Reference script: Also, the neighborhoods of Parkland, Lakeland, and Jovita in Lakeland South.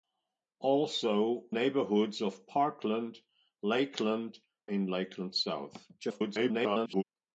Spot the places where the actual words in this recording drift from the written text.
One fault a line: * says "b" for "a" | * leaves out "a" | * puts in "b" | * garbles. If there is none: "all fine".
* leaves out "the"
* leaves out "and Jovita"
* garbles